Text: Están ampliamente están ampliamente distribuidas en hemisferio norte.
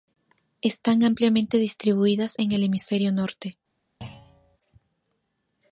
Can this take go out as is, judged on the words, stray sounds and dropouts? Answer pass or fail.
fail